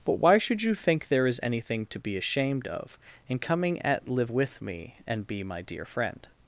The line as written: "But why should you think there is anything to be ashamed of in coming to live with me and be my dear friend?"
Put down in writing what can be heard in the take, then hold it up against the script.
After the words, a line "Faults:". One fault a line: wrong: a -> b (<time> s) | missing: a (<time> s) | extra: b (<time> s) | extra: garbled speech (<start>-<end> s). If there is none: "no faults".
"But why should you think there is anything to be ashamed of in coming at live with me and be my dear friend?"
Faults:
wrong: to -> at (3.8 s)